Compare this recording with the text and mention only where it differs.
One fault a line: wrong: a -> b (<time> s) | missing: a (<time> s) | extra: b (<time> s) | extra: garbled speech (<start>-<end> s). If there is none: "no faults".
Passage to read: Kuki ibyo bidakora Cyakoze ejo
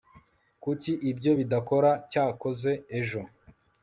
no faults